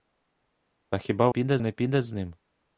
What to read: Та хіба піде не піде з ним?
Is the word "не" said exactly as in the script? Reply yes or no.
yes